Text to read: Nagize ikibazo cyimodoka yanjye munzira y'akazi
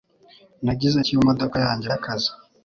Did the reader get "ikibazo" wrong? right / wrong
wrong